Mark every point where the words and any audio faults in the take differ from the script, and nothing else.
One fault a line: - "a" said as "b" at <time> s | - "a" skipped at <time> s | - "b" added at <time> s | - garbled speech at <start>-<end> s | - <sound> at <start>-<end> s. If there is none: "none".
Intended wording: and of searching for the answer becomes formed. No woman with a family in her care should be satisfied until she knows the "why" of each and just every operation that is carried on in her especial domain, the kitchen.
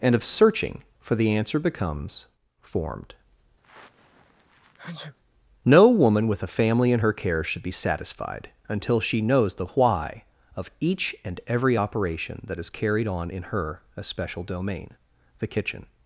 - sneeze at 3.6-5.2 s
- "just" skipped at 11.4 s